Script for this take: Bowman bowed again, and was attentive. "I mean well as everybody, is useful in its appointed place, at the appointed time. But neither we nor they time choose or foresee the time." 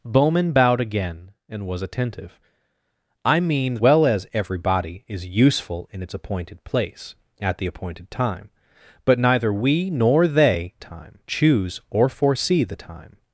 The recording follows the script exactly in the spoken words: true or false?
true